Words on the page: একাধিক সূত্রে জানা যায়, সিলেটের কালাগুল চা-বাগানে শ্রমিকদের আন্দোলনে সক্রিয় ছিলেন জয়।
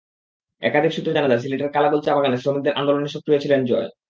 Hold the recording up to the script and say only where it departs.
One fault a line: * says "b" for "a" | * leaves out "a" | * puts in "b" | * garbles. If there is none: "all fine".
all fine